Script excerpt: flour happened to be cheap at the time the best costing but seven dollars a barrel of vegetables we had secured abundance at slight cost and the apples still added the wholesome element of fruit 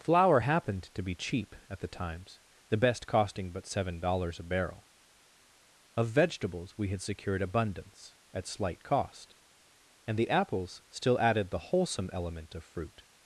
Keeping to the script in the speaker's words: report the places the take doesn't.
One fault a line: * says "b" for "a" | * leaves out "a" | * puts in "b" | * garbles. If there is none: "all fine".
* says "times" for "time"